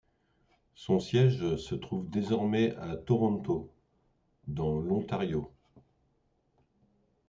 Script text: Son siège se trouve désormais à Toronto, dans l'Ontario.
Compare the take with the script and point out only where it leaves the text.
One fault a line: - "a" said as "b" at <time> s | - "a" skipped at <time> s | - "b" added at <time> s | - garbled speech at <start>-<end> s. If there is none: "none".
none